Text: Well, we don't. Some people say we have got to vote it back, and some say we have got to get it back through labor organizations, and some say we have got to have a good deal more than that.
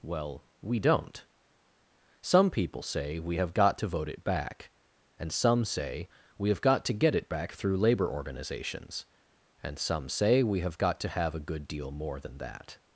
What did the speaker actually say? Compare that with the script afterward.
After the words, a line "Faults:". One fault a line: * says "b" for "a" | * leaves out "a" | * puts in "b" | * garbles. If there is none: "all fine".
Well, we don't. Some people say we have got to vote it back, and some say we have got to get it back through labor organizations, and some say we have got to have a good deal more than that.
Faults:
all fine